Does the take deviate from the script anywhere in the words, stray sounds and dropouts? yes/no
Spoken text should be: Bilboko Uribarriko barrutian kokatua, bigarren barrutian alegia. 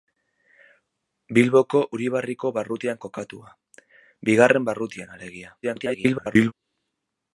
yes